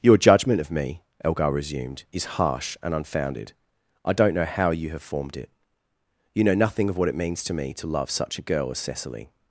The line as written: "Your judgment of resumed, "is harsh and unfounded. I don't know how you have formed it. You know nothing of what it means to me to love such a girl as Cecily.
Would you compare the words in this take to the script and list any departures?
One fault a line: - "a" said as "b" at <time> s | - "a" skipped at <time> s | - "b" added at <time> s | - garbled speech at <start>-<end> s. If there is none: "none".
- "me Elgar" added at 0.7 s